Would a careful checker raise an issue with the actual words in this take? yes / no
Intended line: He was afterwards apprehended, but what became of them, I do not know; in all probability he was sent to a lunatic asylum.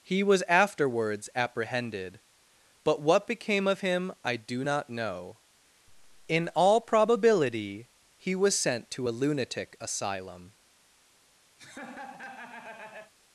yes